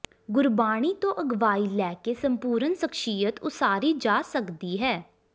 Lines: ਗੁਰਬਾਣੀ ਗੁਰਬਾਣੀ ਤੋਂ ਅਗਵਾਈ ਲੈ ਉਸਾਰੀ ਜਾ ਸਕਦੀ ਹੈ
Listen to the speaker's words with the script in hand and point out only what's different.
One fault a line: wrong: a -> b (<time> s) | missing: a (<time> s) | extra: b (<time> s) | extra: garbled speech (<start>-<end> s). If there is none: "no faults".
missing: ਗੁਰਬਾਣੀ (0.9 s)
extra: ਕੇ ਸੰਪੂਰਨ ਸ਼ਖ਼ਸੀਅਤ (2.0 s)